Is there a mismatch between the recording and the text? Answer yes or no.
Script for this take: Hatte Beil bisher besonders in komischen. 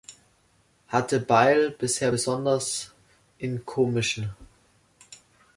no